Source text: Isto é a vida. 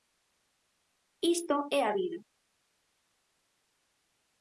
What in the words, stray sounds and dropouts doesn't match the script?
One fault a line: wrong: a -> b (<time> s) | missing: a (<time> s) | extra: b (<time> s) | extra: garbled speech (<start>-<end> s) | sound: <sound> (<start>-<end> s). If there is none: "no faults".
no faults